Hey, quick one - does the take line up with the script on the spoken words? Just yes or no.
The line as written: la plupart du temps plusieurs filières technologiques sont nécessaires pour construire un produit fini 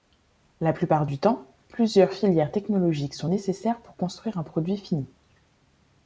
yes